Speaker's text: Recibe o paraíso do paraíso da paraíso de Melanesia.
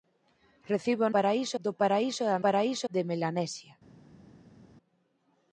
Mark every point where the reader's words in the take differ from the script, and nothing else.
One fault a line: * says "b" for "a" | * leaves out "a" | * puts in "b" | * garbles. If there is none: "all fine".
all fine